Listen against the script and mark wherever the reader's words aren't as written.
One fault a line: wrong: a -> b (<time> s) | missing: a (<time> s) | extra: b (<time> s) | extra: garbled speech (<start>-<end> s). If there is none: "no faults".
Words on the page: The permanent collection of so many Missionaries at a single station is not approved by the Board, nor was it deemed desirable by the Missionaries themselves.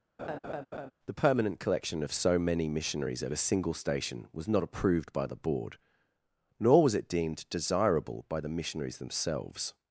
wrong: is -> was (4.3 s)